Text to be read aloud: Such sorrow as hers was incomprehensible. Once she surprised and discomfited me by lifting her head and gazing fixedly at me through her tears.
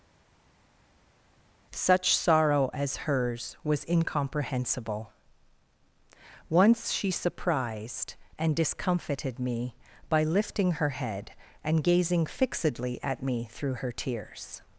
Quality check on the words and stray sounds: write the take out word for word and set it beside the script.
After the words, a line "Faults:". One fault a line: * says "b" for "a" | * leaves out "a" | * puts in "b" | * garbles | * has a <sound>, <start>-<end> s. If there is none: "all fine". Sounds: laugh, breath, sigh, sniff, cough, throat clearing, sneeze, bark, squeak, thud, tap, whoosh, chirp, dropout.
Such sorrow as hers was incomprehensible. Once she surprised and discomfited me by lifting her head and gazing fixedly at me through her tears.
Faults:
all fine